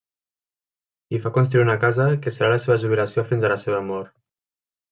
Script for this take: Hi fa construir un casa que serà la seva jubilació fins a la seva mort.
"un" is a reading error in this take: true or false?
true